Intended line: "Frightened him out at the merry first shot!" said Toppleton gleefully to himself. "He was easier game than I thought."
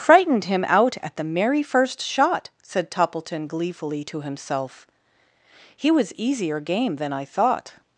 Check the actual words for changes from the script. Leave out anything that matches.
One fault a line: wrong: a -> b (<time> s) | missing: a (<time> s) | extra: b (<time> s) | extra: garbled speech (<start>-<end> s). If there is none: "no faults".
no faults